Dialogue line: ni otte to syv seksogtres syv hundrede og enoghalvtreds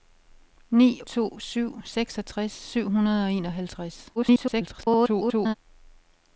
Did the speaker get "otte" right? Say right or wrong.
wrong